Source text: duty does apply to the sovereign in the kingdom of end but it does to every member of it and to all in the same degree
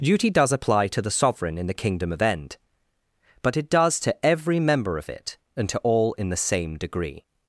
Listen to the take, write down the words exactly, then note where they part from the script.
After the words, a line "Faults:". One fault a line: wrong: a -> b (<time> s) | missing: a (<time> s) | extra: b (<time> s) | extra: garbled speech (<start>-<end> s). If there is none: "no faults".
duty does apply to the sovereign in the kingdom of end but it does to every member of it and to all in the same degree
Faults:
no faults